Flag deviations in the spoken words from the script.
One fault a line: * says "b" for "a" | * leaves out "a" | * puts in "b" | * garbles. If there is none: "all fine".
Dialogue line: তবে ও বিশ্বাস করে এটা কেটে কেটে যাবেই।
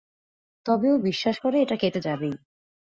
* leaves out "কেটে"